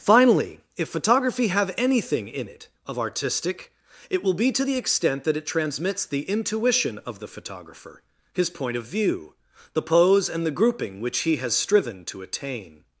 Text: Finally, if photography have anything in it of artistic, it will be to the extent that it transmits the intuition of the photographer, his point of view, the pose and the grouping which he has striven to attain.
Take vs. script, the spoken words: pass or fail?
pass